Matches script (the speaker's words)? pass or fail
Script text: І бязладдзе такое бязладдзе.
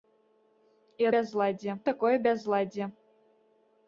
pass